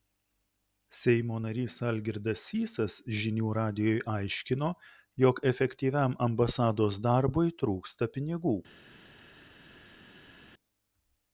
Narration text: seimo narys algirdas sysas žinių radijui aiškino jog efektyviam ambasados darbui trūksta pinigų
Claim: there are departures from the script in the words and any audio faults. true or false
false